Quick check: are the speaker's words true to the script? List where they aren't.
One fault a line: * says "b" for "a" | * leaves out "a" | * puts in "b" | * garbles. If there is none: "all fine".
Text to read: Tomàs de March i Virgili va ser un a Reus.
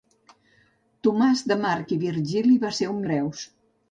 all fine